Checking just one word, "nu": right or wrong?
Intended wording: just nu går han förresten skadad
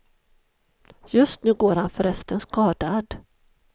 right